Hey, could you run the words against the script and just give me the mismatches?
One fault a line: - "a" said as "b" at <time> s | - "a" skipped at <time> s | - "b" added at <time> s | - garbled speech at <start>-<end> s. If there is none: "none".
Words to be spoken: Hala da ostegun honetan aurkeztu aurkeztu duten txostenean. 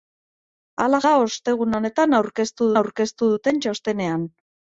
none